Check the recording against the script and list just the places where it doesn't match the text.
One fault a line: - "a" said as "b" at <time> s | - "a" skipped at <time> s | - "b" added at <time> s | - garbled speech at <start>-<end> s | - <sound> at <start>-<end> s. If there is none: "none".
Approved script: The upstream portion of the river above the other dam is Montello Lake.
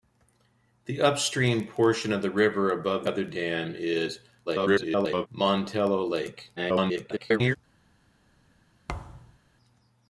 - "the" skipped at 3.0 s
- garbled speech at 4.5-5.3 s
- garbled speech at 6.6-7.6 s
- thud at 8.9-9.4 s